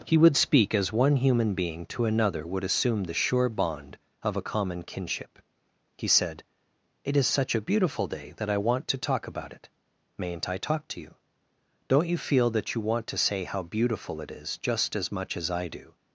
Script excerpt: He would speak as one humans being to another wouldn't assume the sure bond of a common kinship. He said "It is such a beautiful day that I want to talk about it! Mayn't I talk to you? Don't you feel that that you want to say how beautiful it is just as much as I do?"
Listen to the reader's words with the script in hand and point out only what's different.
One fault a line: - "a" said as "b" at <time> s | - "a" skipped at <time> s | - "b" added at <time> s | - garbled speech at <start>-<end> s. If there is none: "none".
- "humans" said as "human" at 1.2 s
- "wouldn't" said as "would" at 2.5 s
- "that" skipped at 12.7 s